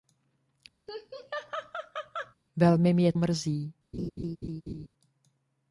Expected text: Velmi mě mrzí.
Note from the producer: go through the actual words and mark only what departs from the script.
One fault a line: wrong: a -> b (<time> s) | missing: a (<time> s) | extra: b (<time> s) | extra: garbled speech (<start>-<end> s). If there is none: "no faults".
no faults